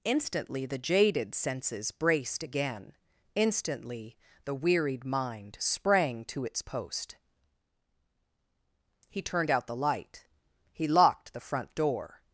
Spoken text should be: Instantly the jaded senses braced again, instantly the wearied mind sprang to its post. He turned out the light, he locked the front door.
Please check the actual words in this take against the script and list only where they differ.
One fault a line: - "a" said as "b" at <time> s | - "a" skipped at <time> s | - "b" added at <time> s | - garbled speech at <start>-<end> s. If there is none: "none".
none